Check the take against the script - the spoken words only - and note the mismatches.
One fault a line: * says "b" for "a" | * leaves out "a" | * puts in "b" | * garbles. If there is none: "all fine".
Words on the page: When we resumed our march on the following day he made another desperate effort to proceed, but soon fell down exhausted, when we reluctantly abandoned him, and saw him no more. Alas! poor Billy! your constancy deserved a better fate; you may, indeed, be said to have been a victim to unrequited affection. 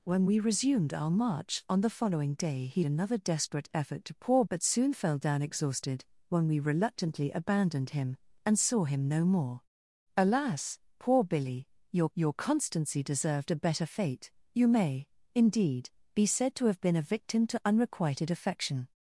* leaves out "made"
* says "poor" for "proceed"
* puts in "your"